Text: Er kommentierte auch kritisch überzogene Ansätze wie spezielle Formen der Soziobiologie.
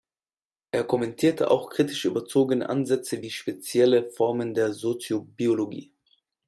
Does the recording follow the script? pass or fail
pass